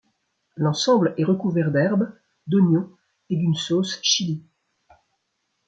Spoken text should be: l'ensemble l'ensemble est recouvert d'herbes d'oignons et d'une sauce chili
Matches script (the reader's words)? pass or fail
fail